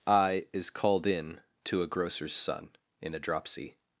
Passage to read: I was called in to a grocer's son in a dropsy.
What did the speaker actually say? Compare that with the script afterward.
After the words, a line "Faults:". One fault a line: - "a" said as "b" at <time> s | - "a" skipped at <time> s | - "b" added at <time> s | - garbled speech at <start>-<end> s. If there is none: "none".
I is called in to a grocer's son in a dropsy.
Faults:
- "was" said as "is" at 0.5 s